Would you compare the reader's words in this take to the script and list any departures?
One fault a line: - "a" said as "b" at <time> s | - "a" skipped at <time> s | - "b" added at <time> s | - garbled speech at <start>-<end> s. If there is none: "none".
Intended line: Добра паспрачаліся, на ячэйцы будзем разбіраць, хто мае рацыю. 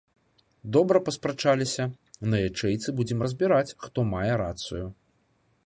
none